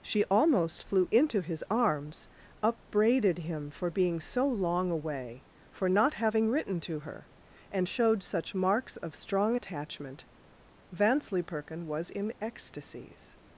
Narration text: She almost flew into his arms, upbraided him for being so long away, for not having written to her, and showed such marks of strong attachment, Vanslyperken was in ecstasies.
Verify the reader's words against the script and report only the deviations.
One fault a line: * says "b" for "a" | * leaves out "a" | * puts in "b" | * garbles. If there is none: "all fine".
all fine